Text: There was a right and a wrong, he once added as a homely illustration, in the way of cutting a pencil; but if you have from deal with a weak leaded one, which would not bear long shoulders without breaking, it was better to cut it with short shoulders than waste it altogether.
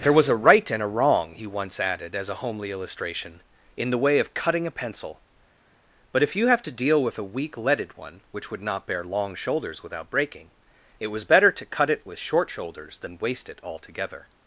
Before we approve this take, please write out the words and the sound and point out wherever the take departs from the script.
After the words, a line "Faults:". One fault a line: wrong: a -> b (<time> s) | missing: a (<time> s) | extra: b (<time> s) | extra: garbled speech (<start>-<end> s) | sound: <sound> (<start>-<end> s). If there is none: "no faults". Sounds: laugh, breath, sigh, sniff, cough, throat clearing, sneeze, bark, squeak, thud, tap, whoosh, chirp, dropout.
There was a right and a wrong, he once added as a homely illustration, in the way of cutting a pencil; but if you have to deal with a weak leaded one, which would not bear long shoulders without breaking, it was better to cut it with short shoulders than waste it altogether.
Faults:
wrong: from -> to (6.6 s)